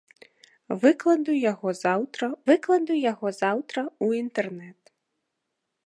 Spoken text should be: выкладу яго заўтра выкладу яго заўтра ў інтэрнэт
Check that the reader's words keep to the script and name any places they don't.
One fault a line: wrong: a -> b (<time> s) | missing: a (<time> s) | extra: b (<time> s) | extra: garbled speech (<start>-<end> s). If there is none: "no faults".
no faults